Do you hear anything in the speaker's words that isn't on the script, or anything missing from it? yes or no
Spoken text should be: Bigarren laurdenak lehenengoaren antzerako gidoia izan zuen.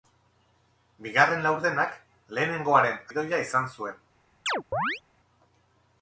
yes